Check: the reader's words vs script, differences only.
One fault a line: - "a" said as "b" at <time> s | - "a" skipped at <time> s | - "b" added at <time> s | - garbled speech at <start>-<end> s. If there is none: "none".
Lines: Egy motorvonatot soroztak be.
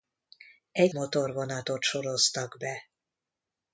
none